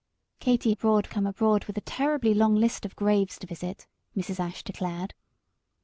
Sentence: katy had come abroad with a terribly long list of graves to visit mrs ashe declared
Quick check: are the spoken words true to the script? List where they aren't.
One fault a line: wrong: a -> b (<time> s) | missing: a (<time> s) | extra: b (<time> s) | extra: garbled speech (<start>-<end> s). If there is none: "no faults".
wrong: had -> abroad (0.7 s)